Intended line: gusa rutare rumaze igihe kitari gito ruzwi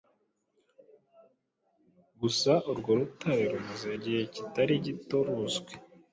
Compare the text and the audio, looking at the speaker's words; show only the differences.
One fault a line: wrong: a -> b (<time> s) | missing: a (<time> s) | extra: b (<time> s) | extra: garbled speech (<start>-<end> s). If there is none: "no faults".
extra: urwo (2.7 s)